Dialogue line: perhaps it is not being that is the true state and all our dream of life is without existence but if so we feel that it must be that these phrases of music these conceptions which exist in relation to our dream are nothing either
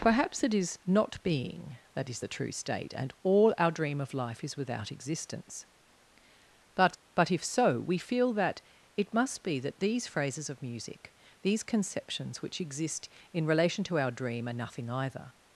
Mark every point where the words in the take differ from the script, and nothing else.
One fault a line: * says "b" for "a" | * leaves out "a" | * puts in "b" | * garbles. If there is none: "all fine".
* puts in "but"